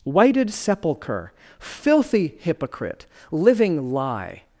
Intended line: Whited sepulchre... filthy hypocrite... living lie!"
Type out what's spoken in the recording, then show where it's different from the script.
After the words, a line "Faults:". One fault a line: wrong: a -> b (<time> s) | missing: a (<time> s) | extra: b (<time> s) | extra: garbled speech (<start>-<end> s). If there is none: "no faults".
Whited sepulchre... filthy hypocrite... living lie!"
Faults:
no faults